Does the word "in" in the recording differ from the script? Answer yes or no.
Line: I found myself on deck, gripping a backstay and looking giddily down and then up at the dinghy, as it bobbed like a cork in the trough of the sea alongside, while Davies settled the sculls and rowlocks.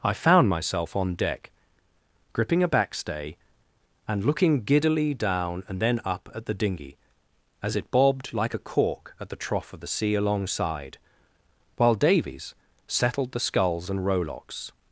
yes